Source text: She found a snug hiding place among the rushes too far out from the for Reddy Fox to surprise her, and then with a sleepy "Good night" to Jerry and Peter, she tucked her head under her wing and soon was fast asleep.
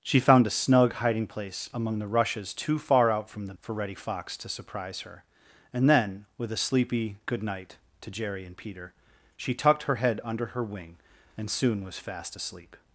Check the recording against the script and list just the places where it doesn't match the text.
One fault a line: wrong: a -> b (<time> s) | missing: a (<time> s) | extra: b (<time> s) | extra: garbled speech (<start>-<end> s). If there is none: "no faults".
no faults